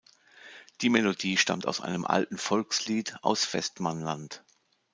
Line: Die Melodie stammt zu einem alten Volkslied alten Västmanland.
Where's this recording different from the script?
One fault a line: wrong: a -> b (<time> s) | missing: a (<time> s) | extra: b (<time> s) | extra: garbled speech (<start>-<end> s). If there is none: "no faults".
wrong: zu -> aus (1.7 s)
wrong: alten -> aus (3.2 s)